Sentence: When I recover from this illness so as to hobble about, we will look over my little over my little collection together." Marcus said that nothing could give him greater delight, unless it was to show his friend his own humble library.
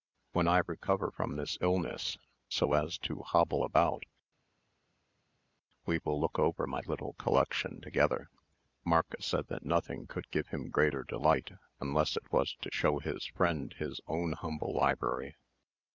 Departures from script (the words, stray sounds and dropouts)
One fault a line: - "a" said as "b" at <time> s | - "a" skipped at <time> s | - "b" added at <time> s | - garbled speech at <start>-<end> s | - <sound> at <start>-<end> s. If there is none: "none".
- "over my little" skipped at 7.1 s